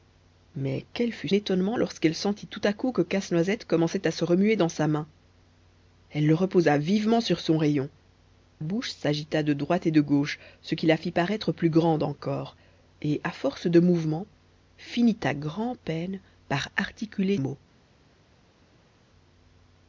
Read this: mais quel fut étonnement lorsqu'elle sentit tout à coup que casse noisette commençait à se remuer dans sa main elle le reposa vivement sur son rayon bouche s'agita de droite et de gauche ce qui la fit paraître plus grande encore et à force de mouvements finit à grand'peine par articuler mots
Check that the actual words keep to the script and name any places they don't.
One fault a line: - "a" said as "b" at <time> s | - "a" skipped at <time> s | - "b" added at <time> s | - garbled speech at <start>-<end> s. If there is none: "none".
none